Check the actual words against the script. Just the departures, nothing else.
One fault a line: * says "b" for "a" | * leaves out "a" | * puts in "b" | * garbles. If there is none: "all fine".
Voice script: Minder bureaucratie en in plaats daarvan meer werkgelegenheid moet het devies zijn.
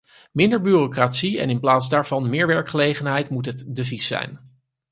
all fine